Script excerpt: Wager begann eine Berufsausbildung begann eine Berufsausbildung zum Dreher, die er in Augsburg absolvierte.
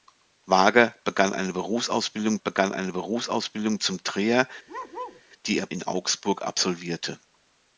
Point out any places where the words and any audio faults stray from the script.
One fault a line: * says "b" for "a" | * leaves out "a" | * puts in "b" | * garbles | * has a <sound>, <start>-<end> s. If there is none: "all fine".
* has a bark, 4.7-5.2 s